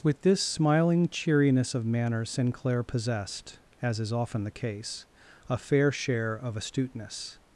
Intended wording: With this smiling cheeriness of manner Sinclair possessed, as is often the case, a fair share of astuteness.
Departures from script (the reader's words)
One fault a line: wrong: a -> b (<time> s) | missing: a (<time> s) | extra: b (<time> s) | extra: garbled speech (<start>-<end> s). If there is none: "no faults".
no faults